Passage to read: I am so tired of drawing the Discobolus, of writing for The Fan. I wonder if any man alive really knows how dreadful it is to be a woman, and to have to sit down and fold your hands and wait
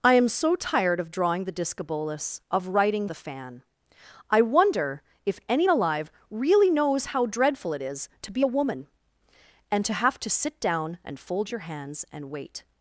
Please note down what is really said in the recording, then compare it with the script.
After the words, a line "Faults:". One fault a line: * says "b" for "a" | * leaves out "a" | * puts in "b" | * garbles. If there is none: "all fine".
I am so tired of drawing the Discobolus, of writing The Fan. I wonder if any alive really knows how dreadful it is to be a woman, and to have to sit down and fold your hands and wait
Faults:
* leaves out "for"
* leaves out "man"